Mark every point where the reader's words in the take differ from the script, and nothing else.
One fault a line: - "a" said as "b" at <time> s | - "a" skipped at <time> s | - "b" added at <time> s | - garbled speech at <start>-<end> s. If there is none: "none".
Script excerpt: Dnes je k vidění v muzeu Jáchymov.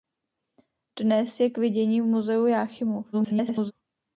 - garbled speech at 3.1-3.7 s